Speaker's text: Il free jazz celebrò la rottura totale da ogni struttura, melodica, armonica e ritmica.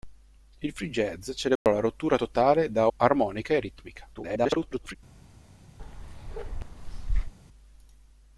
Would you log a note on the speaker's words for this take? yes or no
yes